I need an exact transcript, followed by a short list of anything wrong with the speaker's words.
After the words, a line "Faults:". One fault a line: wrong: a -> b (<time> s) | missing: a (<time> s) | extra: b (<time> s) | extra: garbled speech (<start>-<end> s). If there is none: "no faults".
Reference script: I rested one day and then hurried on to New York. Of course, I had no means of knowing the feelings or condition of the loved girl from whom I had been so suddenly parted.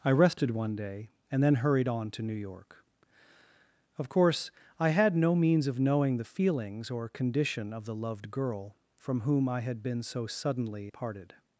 I rested one day and then hurried on to New York. Of course, I had no means of knowing the feelings or condition of the loved girl from whom I had been so suddenly parted.
Faults:
no faults